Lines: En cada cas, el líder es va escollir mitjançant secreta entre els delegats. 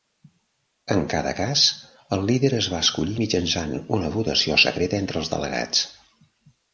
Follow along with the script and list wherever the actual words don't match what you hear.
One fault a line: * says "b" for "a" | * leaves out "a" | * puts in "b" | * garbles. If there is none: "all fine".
* puts in "una votació"